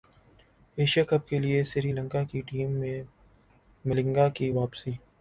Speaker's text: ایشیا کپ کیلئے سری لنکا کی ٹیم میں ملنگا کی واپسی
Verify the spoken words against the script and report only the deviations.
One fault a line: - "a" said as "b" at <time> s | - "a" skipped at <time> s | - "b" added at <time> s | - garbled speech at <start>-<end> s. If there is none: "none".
none